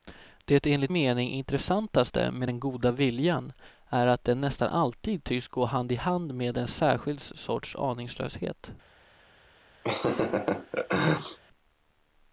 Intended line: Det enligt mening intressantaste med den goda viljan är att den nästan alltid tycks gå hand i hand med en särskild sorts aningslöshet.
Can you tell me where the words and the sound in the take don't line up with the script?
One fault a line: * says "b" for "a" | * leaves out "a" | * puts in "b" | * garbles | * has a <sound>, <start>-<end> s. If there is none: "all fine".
* has a laugh, 9.8-11.4 s